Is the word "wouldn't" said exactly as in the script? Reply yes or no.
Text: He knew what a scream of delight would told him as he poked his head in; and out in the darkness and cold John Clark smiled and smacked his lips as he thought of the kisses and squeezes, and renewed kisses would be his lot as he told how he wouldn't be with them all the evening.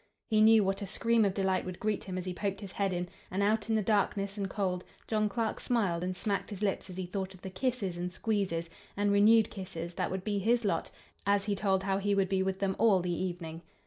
no